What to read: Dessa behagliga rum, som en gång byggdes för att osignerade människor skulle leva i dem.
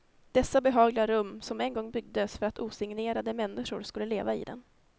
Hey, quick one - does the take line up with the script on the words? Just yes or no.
yes